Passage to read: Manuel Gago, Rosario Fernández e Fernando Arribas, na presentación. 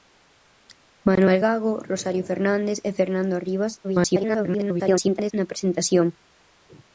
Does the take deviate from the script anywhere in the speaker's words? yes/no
yes